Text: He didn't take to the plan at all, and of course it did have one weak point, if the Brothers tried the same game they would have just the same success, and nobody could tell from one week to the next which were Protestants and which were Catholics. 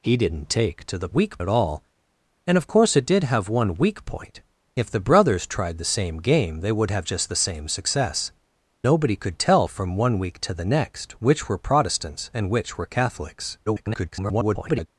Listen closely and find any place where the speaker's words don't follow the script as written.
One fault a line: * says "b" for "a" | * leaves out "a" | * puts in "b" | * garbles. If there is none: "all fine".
* says "weak" for "plan"
* leaves out "and"
* garbles